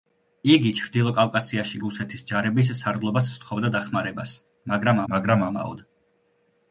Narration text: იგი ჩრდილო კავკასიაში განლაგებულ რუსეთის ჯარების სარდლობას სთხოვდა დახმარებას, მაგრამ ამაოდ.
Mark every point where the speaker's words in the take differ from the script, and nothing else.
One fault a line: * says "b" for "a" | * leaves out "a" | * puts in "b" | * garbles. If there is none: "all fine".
* leaves out "განლაგებულ"
* puts in "მაგრამ"